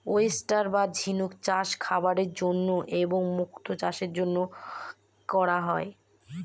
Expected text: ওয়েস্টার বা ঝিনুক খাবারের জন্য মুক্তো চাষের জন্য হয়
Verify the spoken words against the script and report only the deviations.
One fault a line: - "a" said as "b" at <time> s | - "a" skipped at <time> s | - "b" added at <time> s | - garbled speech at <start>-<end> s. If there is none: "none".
- "চাষ" added at 1.4 s
- "এবং" added at 3.0 s
- "করা" added at 5.3 s